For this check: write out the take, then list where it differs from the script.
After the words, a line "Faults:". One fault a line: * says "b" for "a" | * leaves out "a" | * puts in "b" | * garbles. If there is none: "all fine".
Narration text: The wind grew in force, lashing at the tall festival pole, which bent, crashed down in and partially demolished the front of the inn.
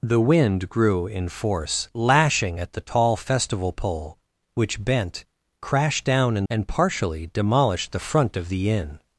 The wind grew in force, lashing at the tall festival pole, which bent, crashed down in and partially demolished the front of the inn.
Faults:
all fine